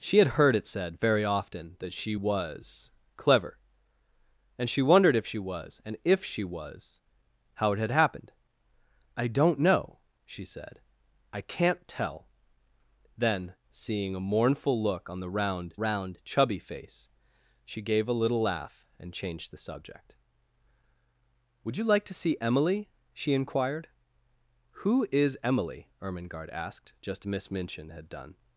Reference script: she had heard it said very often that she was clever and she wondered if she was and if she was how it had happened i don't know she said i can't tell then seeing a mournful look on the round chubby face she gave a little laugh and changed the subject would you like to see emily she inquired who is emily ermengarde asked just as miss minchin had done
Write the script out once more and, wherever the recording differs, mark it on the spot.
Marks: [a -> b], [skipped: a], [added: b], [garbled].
she had heard it said very often that she was clever and she wondered if she was and if she was how it had happened i don't know she said i can't tell then seeing a mournful look on the round [added: round] chubby face she gave a little laugh and changed the subject would you like to see emily she inquired who is emily ermengarde asked just [skipped: as] miss minchin had done